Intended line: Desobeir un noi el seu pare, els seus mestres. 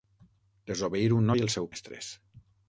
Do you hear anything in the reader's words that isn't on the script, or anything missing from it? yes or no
yes